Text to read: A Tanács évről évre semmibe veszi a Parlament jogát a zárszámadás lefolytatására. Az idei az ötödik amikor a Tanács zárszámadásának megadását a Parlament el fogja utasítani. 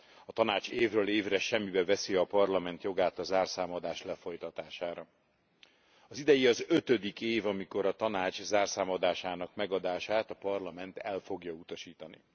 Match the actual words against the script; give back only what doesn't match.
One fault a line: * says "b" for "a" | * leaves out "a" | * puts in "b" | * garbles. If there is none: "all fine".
* puts in "év"